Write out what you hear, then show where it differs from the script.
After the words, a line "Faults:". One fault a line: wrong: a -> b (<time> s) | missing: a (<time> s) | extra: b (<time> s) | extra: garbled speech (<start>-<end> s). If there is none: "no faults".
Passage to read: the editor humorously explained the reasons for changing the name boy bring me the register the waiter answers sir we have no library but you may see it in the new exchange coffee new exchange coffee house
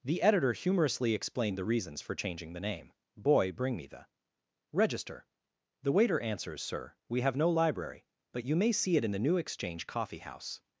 the editor humorously explained the reasons for changing the name boy bring me the register the waiter answers sir we have no library but you may see it in the new exchange coffee house
Faults:
missing: new exchange coffee (10.2 s)